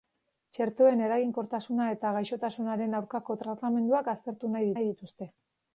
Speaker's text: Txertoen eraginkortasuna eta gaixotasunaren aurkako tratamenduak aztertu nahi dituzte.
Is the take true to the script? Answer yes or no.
no